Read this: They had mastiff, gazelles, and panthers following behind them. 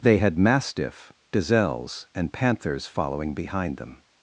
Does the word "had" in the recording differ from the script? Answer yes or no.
no